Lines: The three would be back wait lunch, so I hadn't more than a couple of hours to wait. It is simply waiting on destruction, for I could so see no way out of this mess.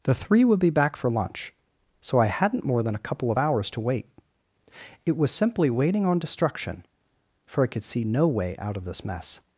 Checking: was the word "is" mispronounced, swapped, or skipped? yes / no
yes